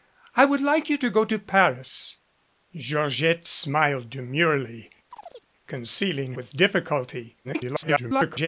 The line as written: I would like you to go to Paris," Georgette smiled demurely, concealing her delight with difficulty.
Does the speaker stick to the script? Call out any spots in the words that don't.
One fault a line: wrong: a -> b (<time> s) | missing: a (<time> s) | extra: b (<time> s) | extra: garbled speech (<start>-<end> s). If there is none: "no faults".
missing: her delight (6.3 s)
extra: garbled speech (7.4-8.5 s)